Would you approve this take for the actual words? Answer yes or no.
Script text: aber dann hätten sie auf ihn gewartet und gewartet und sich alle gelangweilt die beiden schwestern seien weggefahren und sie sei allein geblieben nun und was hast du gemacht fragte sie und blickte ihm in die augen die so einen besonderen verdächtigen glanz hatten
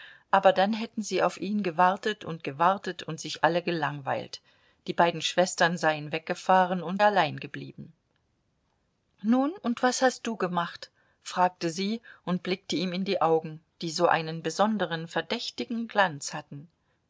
no